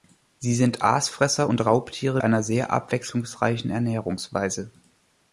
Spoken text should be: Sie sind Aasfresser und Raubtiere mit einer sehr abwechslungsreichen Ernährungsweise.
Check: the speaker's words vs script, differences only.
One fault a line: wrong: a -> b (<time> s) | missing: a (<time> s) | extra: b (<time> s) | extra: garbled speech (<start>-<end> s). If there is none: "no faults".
missing: mit (2.2 s)